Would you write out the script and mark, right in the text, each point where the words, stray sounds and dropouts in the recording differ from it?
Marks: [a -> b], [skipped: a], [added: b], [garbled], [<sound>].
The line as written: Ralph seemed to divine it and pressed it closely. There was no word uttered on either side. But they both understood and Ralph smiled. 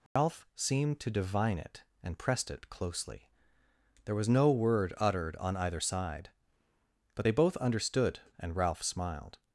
Ralph [dropout] seemed to divine it and pressed it closely. There was no word uttered on either side. But they both understood and Ralph smiled.